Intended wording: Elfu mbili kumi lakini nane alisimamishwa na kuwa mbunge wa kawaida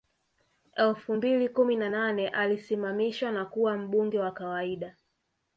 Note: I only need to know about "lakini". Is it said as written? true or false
false